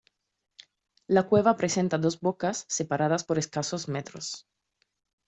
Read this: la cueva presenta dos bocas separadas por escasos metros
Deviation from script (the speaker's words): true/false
false